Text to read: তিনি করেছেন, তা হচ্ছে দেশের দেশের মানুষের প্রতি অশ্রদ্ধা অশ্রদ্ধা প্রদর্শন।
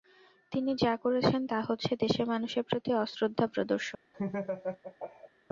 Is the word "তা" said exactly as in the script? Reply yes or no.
yes